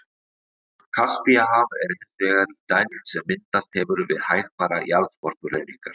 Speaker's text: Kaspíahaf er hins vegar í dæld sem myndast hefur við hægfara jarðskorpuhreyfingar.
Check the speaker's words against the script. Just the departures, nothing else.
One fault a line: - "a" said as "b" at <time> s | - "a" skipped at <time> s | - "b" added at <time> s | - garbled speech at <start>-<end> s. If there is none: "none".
none